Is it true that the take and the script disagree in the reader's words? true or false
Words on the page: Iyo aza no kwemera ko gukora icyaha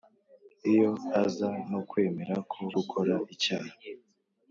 false